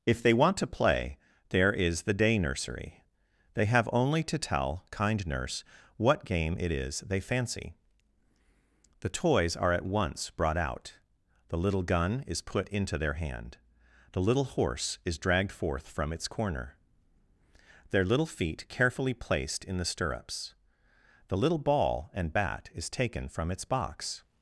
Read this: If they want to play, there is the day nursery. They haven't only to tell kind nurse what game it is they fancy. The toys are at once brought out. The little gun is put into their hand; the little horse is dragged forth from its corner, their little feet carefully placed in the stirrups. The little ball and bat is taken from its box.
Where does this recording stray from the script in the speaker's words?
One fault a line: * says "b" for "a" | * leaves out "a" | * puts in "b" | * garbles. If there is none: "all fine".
* says "have" for "haven't"